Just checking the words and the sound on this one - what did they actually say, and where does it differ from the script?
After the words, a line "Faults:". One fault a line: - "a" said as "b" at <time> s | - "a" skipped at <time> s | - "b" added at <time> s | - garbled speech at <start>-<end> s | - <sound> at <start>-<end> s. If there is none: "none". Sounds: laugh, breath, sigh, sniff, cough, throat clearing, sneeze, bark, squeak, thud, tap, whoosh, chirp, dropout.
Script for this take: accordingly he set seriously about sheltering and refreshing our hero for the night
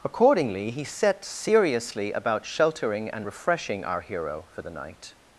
accordingly he set seriously about sheltering and refreshing our hero for the night
Faults:
none